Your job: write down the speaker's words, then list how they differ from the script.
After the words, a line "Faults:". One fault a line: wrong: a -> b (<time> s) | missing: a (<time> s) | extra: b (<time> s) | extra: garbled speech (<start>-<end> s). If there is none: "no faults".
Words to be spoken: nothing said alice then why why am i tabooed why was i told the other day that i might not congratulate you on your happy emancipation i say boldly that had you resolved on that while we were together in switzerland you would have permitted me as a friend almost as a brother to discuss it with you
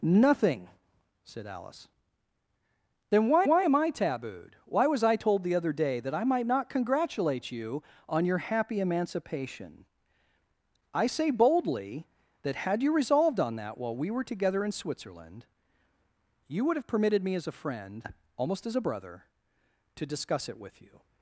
nothing said alice then why why am i tabooed why was i told the other day that i might not congratulate you on your happy emancipation i say boldly that had you resolved on that while we were together in switzerland you would have permitted me as a friend almost as a brother to discuss it with you
Faults:
no faults